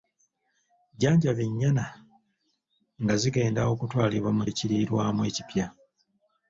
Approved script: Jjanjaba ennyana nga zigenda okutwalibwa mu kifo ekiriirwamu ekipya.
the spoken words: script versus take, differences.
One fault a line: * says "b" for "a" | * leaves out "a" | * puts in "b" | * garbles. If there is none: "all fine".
* leaves out "kifo"